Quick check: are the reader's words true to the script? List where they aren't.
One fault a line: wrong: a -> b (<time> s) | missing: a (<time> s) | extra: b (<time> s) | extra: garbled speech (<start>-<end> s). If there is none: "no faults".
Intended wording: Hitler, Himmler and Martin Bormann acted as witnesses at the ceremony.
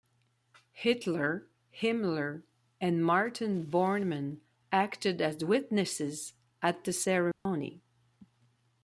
no faults